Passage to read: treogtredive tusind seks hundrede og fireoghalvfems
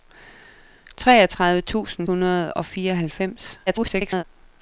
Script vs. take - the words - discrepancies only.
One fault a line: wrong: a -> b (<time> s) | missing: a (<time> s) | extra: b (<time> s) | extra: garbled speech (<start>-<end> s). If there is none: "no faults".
missing: seks (2.1 s)
extra: garbled speech (3.7-4.2 s)